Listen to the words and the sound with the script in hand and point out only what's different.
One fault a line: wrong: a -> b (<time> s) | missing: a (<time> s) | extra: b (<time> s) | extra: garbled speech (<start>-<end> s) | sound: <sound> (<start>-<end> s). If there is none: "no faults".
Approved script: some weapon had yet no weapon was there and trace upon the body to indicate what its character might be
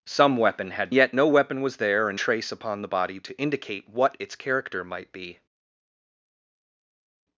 no faults